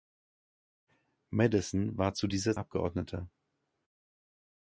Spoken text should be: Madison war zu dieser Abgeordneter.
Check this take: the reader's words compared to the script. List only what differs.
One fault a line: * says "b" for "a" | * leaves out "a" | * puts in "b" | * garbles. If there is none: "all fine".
all fine